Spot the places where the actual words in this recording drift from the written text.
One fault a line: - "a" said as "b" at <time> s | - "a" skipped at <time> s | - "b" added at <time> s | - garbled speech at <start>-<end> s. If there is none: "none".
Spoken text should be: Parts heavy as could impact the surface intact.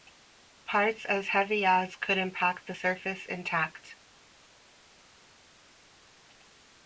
- "as" added at 1.1 s